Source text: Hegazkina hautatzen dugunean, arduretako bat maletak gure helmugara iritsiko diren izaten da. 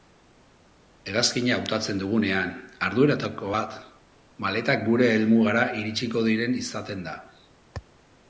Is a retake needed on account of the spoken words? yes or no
no